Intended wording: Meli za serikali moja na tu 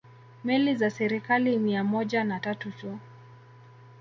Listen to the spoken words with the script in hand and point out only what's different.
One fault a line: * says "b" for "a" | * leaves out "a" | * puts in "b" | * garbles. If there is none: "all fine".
* puts in "mia"
* puts in "tatu"